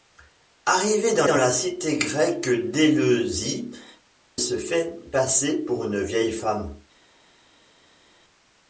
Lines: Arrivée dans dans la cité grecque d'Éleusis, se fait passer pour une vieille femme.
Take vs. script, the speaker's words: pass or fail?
pass